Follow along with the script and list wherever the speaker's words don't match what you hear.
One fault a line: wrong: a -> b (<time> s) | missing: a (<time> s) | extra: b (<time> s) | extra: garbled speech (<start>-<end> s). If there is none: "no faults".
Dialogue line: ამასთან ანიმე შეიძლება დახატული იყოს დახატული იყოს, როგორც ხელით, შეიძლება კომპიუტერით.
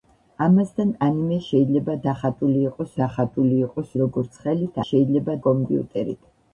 no faults